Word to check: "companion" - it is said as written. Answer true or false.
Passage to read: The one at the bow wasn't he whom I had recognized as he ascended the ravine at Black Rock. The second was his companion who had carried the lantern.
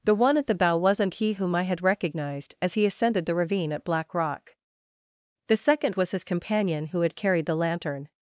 true